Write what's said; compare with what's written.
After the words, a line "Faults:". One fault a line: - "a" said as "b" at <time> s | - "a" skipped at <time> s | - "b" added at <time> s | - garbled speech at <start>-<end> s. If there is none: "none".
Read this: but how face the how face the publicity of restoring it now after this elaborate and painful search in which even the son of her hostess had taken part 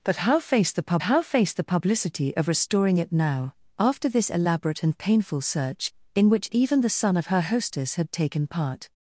but how face the how face the publicity of restoring it now after this elaborate and painful search in which even the son of her hostess had taken part
Faults:
none